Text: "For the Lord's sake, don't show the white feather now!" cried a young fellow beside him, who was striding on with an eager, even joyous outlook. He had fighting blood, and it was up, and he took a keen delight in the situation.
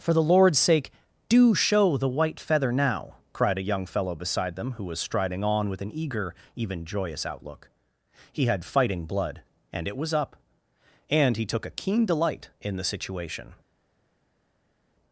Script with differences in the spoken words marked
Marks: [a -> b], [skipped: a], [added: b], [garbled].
"For the Lord's sake, [don't -> do] show the white feather now!" cried a young fellow beside [him, -> them] who was striding on with an eager, even joyous outlook. He had fighting blood, and it was up, and he took a keen delight in the situation.